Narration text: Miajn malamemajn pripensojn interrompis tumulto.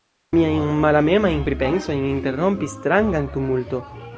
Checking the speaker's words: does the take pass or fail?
fail